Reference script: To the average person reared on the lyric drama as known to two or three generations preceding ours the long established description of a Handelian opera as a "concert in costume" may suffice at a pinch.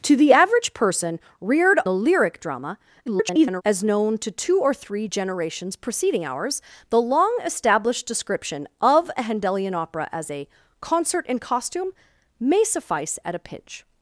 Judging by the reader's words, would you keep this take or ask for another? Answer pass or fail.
fail